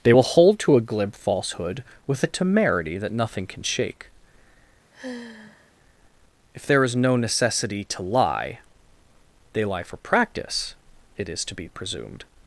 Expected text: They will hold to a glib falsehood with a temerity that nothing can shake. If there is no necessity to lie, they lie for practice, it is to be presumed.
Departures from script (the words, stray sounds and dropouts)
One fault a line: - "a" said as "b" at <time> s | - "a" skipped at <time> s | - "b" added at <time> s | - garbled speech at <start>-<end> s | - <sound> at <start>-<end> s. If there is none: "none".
- sigh at 4.9-5.7 s